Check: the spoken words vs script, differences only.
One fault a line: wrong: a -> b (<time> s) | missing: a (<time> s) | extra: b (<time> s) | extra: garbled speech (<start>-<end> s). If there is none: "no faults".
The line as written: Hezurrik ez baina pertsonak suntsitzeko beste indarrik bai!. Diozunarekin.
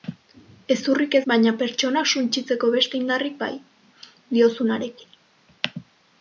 no faults